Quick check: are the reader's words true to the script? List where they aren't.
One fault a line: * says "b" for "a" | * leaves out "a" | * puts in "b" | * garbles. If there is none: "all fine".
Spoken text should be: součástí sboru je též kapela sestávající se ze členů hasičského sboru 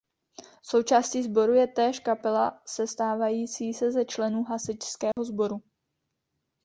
all fine